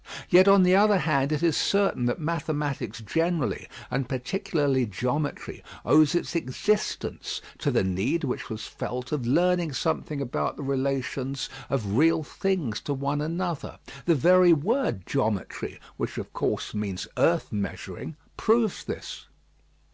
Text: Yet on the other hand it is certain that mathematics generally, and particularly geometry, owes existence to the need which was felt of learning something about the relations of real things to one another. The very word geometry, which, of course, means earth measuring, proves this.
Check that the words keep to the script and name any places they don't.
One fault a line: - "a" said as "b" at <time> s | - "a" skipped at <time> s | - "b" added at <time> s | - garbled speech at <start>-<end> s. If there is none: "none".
- "its" added at 6.1 s